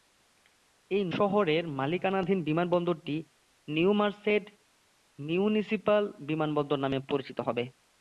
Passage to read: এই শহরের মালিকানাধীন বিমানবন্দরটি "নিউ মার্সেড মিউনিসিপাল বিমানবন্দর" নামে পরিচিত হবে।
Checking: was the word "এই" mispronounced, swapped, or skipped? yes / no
no